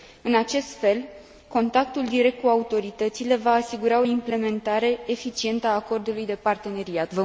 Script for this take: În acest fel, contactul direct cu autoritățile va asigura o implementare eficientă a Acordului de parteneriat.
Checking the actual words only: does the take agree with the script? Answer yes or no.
yes